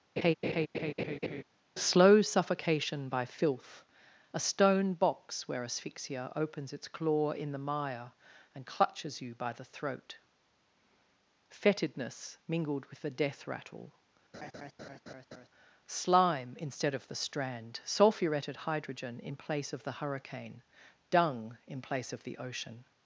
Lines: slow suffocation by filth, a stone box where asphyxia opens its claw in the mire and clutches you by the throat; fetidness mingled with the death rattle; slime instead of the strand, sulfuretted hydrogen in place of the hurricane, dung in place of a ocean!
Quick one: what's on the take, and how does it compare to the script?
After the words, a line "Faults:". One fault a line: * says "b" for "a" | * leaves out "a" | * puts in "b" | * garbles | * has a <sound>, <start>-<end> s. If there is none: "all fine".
slow suffocation by filth, a stone box where asphyxia opens its claw in the mire and clutches you by the throat; fetidness mingled with the death rattle; slime instead of the strand, sulfuretted hydrogen in place of the hurricane, dung in place of the ocean!
Faults:
* has a laugh, 0.2-1.4 s
* has a laugh, 14.3-15.5 s
* says "the" for "a"